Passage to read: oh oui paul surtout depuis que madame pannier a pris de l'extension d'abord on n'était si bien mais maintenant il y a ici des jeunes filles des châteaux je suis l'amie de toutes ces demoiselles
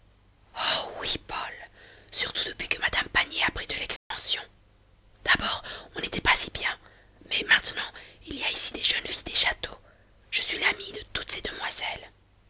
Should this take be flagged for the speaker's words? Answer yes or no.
yes